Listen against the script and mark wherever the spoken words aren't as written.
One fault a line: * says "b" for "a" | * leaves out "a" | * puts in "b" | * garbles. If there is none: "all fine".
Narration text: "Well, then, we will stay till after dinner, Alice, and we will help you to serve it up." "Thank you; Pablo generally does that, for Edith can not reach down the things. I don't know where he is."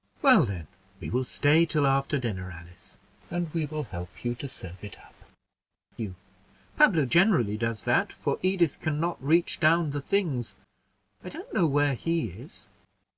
* leaves out "Thank"